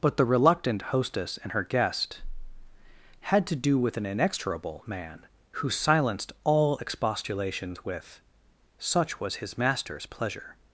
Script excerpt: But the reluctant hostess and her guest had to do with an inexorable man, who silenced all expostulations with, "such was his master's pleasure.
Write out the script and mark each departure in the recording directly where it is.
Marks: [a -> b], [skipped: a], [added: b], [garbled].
But the reluctant hostess and her guest had to do with an inexorable man, who silenced all expostulations with, "such was his master's pleasure.